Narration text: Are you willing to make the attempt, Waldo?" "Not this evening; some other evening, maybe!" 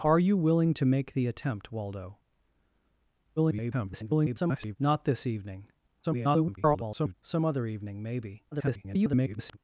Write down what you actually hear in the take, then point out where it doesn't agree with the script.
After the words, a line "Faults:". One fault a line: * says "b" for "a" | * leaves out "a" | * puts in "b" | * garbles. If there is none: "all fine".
Are you willing to make the attempt, Waldo?" [garbled] "Not this evening; [garbled] some other evening, maybe!" [garbled]
Faults:
* garbles
* garbles
* garbles